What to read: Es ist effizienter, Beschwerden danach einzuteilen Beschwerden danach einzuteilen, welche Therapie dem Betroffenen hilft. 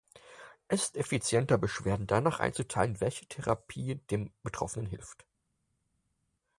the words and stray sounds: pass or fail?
fail